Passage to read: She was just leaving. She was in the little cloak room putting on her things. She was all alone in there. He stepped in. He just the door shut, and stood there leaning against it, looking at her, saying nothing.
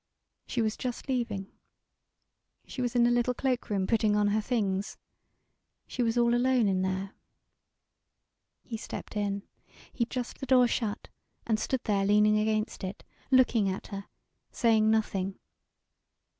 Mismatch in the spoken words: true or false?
false